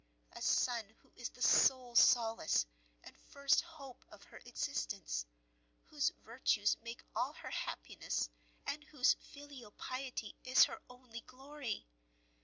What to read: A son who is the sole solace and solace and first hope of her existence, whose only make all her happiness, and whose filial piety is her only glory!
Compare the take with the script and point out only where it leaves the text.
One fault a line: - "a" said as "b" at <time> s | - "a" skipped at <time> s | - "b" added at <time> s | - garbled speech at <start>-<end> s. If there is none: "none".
- "solace and" skipped at 3.1 s
- "only" said as "virtues" at 6.1 s